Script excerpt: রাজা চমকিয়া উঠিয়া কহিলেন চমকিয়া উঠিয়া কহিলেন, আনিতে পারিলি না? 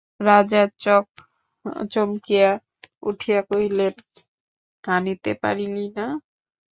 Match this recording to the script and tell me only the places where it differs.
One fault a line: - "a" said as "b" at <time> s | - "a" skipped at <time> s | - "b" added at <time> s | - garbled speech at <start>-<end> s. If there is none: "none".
- "চমকিয়া উঠিয়া কহিলেন" skipped at 3.9 s